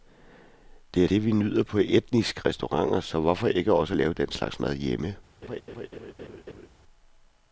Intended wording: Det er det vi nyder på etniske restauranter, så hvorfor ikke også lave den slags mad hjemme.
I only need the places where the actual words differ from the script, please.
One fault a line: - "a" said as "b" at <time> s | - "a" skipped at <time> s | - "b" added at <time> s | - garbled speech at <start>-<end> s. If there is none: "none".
none